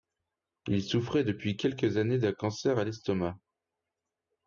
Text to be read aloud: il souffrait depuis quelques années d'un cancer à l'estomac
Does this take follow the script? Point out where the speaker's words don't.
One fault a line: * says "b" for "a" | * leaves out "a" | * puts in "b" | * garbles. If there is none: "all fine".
all fine